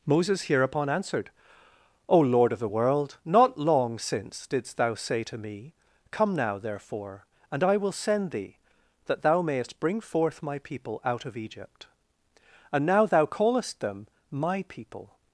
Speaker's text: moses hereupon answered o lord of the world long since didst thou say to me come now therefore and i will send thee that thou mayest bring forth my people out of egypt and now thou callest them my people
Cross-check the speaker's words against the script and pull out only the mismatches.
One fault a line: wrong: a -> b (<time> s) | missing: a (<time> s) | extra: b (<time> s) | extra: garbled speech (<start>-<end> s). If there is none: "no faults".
extra: not (3.3 s)